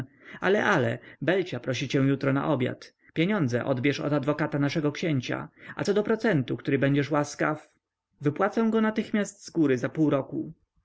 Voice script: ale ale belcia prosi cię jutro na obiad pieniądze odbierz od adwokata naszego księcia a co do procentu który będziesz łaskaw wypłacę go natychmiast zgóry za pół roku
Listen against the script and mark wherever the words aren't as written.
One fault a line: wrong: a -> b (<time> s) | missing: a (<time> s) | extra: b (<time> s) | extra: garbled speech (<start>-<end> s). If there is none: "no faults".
no faults